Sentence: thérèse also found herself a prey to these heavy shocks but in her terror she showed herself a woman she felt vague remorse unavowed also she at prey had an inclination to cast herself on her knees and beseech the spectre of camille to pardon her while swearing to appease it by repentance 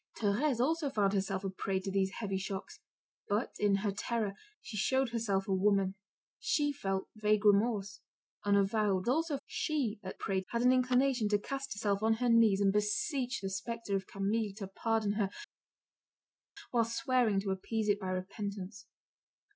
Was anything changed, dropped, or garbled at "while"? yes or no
no